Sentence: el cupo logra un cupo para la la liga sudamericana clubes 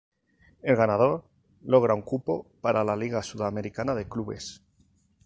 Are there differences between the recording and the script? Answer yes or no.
yes